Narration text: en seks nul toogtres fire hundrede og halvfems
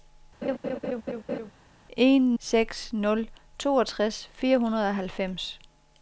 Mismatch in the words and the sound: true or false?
true